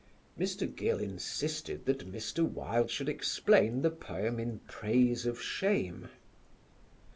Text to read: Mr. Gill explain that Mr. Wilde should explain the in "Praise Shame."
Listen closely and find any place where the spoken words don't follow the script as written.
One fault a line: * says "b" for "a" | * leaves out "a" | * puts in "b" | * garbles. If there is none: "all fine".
* says "insisted" for "explain"
* puts in "poem"
* puts in "of"